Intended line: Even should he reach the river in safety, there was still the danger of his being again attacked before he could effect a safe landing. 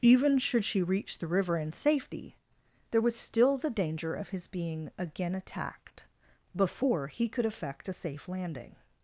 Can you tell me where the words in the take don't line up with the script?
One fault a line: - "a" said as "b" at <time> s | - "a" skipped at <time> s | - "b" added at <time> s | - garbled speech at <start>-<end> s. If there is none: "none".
- "he" said as "she" at 0.7 s